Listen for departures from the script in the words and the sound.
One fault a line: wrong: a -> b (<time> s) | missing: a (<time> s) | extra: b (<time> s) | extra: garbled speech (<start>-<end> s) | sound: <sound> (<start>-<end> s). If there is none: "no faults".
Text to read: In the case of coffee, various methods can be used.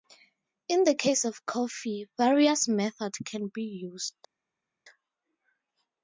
no faults